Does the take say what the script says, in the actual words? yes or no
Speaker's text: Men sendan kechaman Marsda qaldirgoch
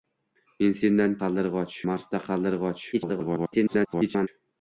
no